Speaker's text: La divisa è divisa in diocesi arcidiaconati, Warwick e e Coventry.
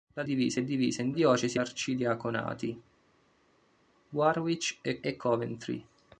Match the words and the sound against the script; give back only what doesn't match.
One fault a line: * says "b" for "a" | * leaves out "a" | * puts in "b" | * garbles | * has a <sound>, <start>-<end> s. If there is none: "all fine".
all fine